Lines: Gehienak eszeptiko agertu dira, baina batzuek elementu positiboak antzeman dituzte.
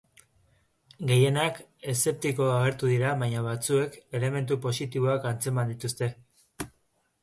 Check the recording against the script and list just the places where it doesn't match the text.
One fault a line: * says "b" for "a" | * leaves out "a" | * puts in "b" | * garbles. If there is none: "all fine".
all fine